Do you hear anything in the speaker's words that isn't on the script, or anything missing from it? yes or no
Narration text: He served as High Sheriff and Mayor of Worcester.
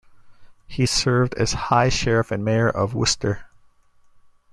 no